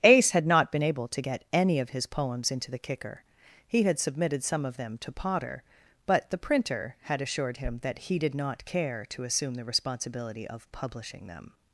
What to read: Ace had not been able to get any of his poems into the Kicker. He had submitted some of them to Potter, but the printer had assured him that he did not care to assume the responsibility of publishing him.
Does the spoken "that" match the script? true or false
true